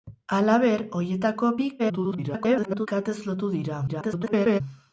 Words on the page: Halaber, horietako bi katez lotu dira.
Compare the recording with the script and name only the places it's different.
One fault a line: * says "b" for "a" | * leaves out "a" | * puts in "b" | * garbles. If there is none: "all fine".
* garbles
* garbles